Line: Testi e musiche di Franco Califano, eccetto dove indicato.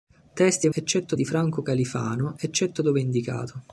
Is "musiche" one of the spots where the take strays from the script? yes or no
yes